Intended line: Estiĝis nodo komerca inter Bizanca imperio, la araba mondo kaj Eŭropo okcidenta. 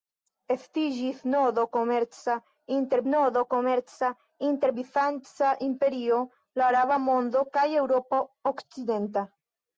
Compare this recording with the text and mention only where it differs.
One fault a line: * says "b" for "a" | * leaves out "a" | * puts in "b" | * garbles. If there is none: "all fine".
* puts in "nodo komerca inter"